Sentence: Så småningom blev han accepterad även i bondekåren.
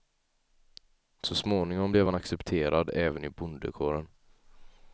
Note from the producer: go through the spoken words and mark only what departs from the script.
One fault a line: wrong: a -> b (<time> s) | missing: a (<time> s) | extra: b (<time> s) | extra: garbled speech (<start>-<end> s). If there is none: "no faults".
no faults